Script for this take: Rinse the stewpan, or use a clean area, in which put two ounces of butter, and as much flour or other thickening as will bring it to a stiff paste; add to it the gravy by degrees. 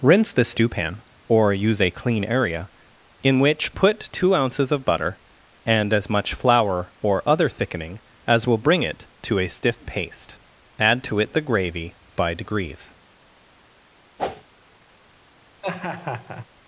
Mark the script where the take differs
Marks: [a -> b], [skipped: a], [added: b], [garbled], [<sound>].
Rinse the stewpan, or use a clean area, in which put two ounces of butter, and as much flour or other thickening as will bring it to a stiff paste; add to it the gravy by degrees. [whoosh] [laugh]